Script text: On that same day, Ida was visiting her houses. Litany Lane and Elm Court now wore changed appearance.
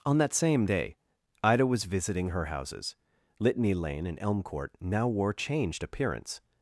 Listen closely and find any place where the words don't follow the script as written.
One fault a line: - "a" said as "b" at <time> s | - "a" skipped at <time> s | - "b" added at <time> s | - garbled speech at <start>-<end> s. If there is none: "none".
none